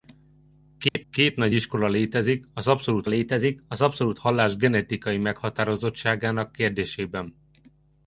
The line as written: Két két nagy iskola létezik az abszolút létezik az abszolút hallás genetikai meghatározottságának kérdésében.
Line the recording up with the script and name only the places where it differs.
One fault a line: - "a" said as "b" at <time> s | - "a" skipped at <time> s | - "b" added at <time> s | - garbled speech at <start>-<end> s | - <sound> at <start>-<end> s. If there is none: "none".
- dropout at 0.9-1.0 s